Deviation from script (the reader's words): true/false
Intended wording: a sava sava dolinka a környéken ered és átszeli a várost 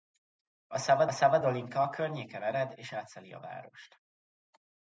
false